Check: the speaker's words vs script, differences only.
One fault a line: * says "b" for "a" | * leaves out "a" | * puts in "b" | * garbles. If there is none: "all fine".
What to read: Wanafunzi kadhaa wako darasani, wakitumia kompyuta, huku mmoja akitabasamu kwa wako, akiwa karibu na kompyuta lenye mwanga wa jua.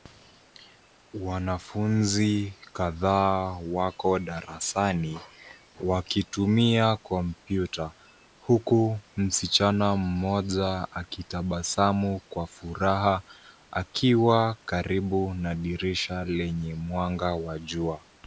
* puts in "msichana"
* says "furaha" for "wako"
* says "dirisha" for "kompyuta"